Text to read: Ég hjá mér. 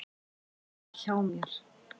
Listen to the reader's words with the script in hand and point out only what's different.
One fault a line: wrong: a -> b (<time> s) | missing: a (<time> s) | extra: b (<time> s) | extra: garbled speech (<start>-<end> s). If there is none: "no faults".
no faults